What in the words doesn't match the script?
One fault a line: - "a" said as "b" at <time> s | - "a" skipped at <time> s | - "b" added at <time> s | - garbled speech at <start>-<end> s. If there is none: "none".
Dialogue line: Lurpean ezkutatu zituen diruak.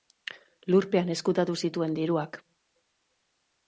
none